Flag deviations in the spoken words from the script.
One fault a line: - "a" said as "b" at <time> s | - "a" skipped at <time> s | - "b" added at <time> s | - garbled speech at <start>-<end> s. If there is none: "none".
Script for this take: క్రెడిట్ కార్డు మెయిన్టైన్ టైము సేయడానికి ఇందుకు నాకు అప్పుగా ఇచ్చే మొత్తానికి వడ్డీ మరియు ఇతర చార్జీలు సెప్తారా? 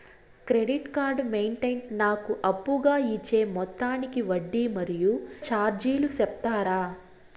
- "టైము సేయడానికి ఇందుకు" skipped at 1.8 s
- "ఇతర" skipped at 5.1 s